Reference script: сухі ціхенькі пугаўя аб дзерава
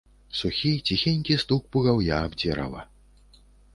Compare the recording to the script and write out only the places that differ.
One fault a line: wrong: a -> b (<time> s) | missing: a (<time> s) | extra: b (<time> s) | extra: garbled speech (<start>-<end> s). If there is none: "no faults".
extra: стук (1.4 s)